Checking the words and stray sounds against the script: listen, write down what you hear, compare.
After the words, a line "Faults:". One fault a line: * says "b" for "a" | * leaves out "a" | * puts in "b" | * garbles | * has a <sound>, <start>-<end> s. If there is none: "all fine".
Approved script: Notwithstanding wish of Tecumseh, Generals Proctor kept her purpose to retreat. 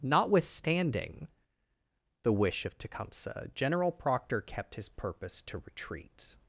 Notwithstanding the wish of Tecumseh, General Proctor kept his purpose to retreat.
Faults:
* puts in "the"
* says "General" for "Generals"
* says "his" for "her"